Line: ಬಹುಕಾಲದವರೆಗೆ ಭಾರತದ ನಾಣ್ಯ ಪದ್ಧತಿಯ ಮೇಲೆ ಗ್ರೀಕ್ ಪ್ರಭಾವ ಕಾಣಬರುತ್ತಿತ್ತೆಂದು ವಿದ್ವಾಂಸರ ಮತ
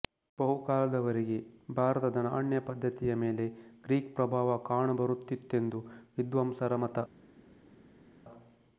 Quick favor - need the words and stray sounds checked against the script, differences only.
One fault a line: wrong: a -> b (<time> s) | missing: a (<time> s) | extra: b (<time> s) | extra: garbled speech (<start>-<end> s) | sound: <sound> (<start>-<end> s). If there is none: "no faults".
no faults